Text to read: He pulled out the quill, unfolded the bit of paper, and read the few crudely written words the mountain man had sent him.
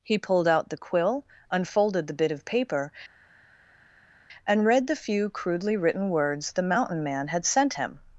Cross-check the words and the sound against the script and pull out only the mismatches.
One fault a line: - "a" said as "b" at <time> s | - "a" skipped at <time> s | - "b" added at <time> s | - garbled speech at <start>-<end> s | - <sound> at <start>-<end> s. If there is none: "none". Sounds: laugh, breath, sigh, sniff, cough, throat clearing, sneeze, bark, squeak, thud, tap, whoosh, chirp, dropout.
none